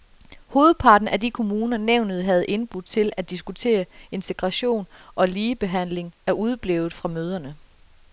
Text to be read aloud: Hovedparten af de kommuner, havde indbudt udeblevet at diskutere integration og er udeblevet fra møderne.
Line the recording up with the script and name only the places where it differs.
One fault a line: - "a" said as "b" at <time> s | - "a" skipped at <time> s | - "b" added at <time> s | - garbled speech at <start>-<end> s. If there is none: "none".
- "nævnet" added at 1.8 s
- "udeblevet" said as "til" at 2.8 s
- "ligebehandling" added at 5.3 s